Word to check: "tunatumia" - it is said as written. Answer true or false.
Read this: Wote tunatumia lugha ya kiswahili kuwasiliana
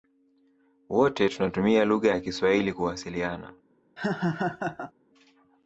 true